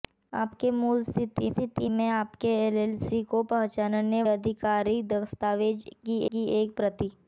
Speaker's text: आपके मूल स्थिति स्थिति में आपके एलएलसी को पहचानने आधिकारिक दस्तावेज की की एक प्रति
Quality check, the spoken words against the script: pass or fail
pass